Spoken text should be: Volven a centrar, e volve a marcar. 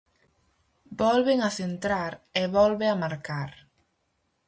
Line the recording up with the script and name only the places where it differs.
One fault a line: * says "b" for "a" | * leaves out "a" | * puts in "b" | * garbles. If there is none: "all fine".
all fine